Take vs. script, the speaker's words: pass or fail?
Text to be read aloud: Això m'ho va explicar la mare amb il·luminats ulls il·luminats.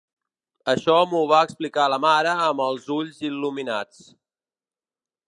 fail